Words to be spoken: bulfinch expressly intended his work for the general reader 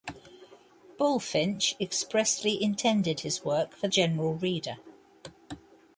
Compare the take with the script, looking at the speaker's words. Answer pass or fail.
fail